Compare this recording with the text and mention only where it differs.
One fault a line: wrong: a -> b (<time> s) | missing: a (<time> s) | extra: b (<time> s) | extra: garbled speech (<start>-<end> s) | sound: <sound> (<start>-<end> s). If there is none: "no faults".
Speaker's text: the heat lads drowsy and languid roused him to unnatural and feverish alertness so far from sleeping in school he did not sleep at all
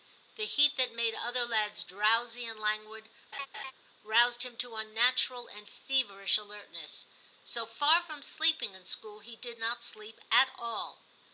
extra: that made other (0.8 s)
sound: laugh (3.3-3.7 s)